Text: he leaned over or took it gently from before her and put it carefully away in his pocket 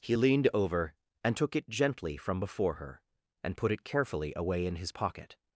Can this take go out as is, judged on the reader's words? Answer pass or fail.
fail